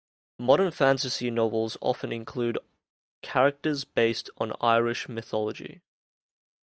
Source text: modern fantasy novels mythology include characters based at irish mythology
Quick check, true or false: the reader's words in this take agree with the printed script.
false